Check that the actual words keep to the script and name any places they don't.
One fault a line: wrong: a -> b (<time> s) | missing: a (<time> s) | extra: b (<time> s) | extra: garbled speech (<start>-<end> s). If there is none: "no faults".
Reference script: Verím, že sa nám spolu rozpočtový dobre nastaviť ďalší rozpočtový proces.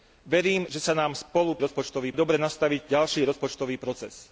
no faults